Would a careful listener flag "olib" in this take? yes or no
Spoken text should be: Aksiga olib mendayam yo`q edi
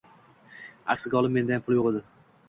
no